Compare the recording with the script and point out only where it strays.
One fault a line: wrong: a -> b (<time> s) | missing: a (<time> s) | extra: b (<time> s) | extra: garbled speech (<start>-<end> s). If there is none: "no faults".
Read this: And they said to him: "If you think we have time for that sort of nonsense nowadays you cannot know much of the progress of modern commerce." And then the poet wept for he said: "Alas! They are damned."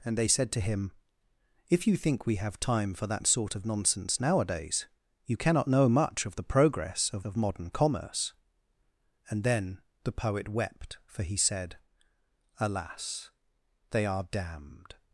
extra: of (7.2 s)